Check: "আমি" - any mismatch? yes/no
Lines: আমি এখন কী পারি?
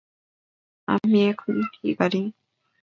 no